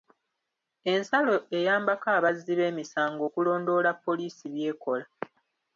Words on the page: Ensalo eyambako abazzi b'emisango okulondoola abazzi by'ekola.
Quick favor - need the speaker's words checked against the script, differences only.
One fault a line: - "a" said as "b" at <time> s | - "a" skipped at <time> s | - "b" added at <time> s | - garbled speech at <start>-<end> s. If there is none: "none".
- "abazzi" said as "poliisi" at 4.0 s